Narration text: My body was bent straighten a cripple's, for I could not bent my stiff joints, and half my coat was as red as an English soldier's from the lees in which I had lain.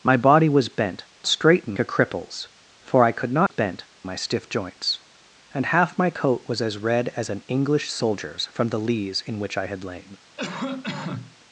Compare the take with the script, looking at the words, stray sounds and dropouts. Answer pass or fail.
fail